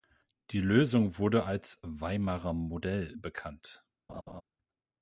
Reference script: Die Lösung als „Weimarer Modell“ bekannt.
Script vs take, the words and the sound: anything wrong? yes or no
yes